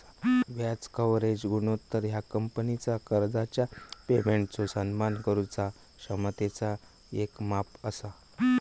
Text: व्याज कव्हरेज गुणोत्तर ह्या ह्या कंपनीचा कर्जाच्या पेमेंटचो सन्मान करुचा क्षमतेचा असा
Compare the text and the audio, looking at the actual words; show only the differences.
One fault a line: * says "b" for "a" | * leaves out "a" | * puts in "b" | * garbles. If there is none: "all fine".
* leaves out "ह्या"
* puts in "येक माप"